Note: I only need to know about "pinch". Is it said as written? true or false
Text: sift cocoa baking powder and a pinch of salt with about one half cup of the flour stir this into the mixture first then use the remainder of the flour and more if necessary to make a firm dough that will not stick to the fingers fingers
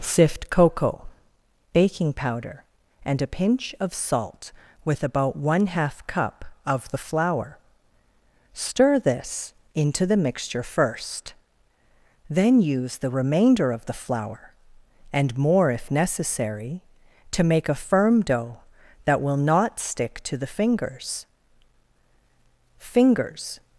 true